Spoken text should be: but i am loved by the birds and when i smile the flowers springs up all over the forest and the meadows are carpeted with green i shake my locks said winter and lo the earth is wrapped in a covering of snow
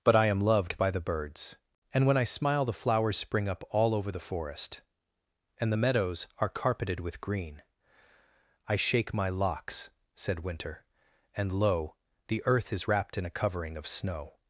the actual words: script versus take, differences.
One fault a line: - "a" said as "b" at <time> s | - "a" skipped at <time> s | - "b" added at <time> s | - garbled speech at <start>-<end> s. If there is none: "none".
- "springs" said as "spring" at 3.2 s